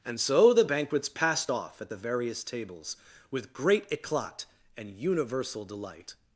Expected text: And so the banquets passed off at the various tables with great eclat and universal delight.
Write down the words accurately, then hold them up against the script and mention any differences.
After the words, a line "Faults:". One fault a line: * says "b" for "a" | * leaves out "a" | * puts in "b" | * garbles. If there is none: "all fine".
And so the banquets passed off at the various tables with great eclat and universal delight.
Faults:
all fine